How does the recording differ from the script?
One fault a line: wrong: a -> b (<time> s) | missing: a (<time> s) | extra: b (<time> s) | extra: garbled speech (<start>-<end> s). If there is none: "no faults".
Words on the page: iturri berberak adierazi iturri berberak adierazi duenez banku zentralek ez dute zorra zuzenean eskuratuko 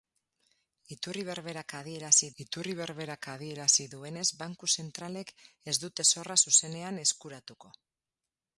no faults